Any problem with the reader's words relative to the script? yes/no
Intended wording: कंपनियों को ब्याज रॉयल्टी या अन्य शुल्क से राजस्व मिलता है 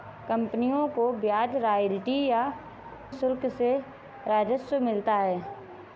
yes